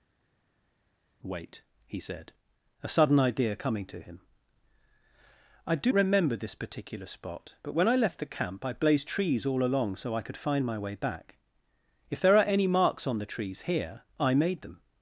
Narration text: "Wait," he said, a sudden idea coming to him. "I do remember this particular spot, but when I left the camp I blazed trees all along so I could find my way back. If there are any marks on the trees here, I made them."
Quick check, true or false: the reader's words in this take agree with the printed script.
true